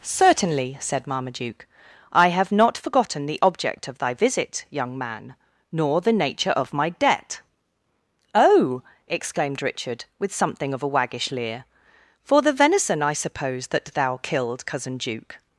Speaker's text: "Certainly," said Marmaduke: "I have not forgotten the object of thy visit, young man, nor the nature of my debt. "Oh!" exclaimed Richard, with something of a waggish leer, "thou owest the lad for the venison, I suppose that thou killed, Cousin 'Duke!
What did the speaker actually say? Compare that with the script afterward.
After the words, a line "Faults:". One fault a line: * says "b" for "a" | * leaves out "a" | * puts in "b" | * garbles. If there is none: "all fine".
"Certainly," said Marmaduke: "I have not forgotten the object of thy visit, young man, nor the nature of my debt. "Oh!" exclaimed Richard, with something of a waggish leer, "for the venison, I suppose that thou killed, Cousin 'Duke!
Faults:
* leaves out "thou owest the lad"